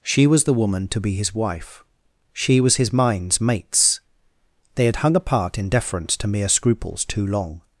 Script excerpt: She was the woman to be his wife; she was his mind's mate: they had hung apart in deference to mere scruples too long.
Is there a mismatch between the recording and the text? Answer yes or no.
yes